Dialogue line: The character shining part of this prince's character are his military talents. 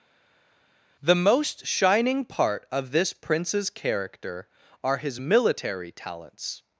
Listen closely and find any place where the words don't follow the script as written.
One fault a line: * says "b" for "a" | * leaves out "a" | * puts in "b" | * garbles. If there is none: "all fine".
* says "most" for "character"